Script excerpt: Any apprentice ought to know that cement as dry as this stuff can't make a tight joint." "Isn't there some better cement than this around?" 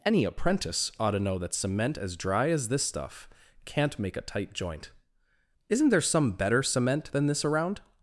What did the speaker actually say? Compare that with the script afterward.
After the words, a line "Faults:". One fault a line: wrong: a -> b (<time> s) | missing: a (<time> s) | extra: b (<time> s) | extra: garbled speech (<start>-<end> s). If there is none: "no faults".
Any apprentice ought to know that cement as dry as this stuff can't make a tight joint." "Isn't there some better cement than this around?"
Faults:
no faults